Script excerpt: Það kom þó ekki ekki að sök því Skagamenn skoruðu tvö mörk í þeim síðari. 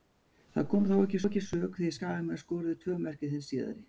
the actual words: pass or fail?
pass